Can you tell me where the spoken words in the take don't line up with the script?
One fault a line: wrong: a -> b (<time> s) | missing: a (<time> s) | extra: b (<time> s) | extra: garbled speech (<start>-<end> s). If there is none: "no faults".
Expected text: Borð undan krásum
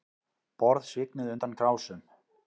extra: svignuðu (0.9 s)